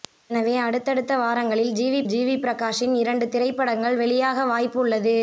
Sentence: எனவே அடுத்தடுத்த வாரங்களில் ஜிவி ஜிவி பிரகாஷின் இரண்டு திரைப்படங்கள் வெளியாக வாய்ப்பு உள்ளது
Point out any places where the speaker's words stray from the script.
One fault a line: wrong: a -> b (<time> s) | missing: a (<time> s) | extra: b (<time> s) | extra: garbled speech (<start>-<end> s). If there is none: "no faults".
no faults